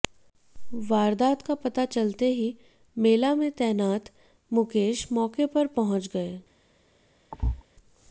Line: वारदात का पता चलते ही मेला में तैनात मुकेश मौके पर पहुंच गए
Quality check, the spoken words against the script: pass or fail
pass